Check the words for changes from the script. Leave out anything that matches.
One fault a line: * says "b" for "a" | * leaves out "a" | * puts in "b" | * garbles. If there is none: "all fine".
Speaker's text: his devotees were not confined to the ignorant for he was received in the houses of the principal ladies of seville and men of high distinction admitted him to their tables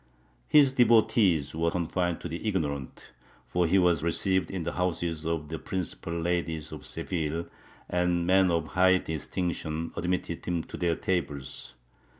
* leaves out "not"